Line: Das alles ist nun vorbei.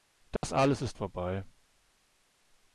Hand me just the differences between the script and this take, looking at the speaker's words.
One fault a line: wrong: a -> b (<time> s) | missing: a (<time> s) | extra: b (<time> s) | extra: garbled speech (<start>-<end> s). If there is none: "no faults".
missing: nun (1.0 s)